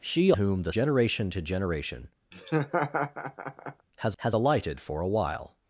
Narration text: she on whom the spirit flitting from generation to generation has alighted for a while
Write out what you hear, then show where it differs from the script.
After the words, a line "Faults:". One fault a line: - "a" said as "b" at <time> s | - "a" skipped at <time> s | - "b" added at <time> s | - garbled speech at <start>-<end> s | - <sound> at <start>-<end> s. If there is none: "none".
she whom the generation to generation has has alighted for a while
Faults:
- "on" skipped at 0.3 s
- "spirit flitting from" skipped at 0.7 s
- laugh at 2.3-3.9 s
- "has" added at 4.2 s